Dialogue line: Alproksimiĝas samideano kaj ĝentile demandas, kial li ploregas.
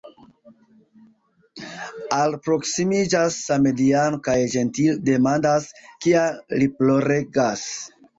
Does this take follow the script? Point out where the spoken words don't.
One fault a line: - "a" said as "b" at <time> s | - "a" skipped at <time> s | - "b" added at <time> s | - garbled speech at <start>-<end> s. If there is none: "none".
none